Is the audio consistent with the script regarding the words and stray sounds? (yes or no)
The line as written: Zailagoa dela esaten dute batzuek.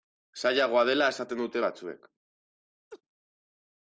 no